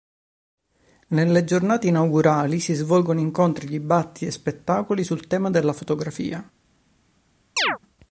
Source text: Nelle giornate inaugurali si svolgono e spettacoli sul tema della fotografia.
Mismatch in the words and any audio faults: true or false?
true